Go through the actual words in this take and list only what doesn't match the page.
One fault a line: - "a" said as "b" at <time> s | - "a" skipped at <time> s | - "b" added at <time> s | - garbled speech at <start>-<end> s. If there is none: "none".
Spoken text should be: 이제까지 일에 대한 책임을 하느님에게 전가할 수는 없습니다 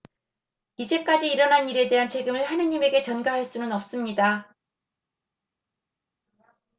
- "일어난" added at 1.3 s